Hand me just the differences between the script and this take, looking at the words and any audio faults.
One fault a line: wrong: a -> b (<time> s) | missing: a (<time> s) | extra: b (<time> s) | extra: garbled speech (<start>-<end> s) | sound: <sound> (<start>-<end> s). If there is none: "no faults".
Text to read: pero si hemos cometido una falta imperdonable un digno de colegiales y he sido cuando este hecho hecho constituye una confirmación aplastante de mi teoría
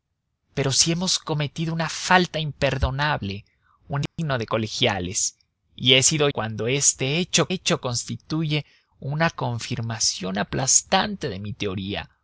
sound: dropout (4.1-4.2 s)